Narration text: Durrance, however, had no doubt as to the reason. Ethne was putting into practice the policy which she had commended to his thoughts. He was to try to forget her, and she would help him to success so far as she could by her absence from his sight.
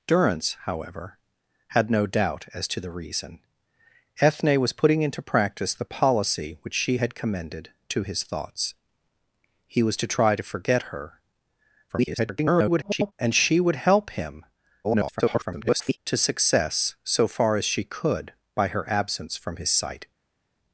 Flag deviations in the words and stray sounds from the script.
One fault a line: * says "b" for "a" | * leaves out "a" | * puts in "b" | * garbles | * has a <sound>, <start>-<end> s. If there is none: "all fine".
* garbles
* garbles